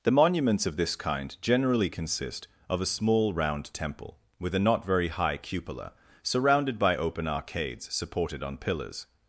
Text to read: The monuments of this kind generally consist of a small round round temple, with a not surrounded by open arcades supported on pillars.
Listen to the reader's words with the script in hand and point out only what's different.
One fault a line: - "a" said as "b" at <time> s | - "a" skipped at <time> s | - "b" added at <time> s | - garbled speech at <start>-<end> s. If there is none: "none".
- "round" skipped at 3.7 s
- "very high cupola" added at 4.9 s